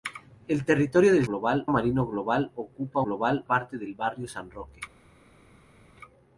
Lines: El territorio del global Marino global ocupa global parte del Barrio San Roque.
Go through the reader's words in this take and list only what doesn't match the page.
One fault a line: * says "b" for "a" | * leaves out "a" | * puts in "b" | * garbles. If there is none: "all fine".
all fine